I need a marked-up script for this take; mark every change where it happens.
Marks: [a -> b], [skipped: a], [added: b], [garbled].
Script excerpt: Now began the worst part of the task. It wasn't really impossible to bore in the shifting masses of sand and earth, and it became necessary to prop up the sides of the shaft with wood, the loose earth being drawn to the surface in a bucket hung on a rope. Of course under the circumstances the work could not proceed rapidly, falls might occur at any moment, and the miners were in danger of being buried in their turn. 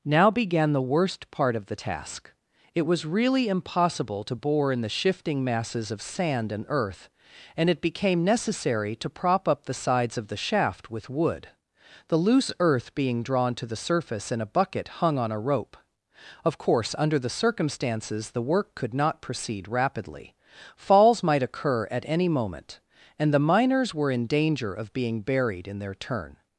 Now began the worst part of the task. It [wasn't -> was] really impossible to bore in the shifting masses of sand and earth, and it became necessary to prop up the sides of the shaft with wood, the loose earth being drawn to the surface in a bucket hung on a rope. Of course under the circumstances the work could not proceed rapidly, falls might occur at any moment, and the miners were in danger of being buried in their turn.